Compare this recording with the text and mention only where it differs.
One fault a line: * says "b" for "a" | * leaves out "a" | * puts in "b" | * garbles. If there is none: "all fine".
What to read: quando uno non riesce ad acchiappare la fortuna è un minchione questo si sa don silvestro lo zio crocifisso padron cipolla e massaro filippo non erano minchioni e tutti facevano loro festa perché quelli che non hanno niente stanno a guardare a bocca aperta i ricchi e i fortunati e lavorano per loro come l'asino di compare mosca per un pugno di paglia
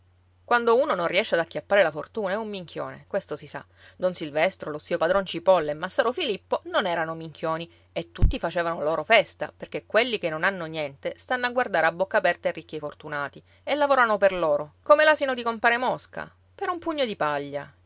* leaves out "crocifisso"